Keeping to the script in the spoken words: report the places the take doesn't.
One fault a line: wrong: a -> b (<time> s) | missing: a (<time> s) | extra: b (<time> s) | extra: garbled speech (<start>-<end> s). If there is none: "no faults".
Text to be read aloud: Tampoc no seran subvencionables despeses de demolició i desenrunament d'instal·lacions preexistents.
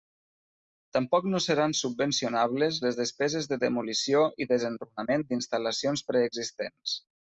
extra: les (2.9 s)